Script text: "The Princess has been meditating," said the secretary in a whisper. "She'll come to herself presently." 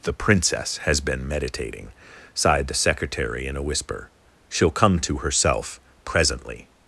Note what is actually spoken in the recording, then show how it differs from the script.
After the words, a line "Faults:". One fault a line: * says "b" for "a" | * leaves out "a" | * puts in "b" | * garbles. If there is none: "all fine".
"The Princess has been meditating," sighed the secretary in a whisper. "She'll come to herself presently."
Faults:
* says "sighed" for "said"